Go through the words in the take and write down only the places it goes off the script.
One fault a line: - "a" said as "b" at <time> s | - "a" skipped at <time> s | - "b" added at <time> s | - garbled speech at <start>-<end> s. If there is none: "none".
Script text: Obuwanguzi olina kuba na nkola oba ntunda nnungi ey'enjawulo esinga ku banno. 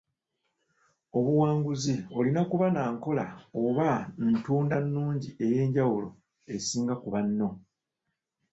none